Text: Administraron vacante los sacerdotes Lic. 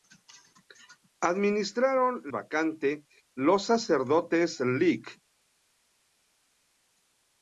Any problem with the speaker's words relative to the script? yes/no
no